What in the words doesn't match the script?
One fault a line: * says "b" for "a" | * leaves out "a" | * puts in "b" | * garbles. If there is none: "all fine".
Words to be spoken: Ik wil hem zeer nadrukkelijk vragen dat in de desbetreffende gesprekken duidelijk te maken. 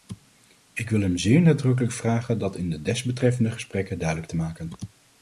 all fine